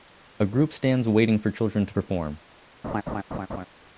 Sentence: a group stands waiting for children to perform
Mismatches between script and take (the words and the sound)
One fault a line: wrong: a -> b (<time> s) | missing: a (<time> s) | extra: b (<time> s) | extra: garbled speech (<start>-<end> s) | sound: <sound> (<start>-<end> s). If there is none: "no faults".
sound: laugh (2.8-3.7 s)